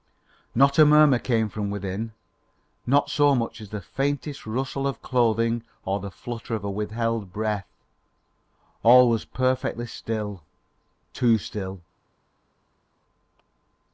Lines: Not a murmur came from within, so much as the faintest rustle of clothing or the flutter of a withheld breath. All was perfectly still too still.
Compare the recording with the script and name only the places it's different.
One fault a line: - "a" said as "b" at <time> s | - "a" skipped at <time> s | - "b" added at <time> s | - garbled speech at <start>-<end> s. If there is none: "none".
- "not" added at 2.9 s